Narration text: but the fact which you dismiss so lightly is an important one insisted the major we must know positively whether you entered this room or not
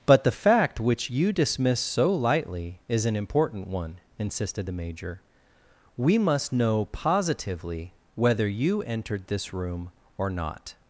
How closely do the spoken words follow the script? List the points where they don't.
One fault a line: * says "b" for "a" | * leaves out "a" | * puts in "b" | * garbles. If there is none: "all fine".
all fine